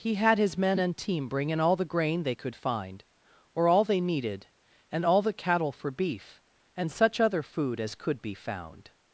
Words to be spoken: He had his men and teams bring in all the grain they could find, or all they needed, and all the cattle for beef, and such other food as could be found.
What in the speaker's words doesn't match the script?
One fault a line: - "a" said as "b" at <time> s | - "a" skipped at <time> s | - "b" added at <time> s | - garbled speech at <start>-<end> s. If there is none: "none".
- "teams" said as "team" at 1.0 s